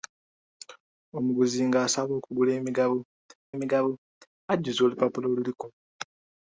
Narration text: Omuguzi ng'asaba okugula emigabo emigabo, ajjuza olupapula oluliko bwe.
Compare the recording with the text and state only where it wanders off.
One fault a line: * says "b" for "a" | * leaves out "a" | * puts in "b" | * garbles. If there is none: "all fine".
all fine